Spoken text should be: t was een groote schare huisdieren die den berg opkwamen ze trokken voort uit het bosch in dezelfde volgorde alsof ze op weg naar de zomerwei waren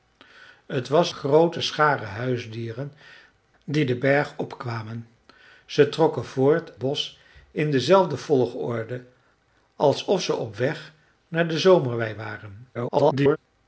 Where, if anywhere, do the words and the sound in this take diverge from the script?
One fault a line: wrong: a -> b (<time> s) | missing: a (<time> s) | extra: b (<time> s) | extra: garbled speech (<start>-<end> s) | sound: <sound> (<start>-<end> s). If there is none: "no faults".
missing: een (1.1 s)
missing: uit het (6.8 s)
extra: garbled speech (12.7-13.4 s)